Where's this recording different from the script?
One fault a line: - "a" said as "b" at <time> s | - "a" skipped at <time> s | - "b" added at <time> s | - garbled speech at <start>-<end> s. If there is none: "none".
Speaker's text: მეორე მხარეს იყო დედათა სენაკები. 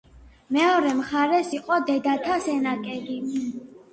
none